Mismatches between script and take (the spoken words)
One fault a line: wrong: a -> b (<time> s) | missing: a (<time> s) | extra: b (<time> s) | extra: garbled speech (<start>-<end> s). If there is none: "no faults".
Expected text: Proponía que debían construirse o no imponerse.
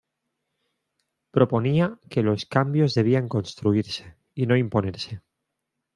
extra: los cambios (2.2 s)
wrong: o -> y (4.3 s)